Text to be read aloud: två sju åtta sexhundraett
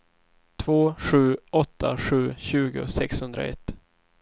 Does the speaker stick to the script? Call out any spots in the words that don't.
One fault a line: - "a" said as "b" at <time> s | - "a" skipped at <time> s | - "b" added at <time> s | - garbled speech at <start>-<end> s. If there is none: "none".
- "sju tjugo" added at 2.0 s